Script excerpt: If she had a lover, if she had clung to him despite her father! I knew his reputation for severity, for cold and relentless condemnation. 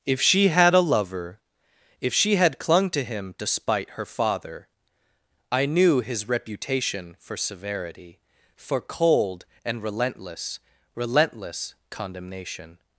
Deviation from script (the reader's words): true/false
true